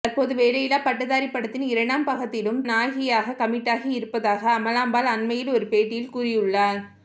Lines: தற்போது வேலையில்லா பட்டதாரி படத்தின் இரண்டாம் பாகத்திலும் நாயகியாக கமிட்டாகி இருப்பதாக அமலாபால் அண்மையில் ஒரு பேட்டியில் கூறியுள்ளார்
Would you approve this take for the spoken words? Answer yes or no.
yes